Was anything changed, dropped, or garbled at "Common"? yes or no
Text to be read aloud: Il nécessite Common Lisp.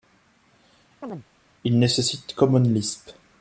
no